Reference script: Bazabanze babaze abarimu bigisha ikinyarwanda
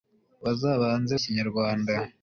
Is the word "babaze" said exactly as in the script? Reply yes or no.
no